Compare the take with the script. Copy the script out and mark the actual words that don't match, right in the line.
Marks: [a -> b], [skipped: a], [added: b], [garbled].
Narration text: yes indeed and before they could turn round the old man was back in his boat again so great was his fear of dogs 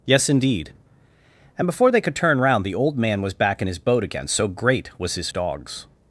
yes indeed and before they could turn round the old man was back in his boat again so great was his [skipped: fear of] dogs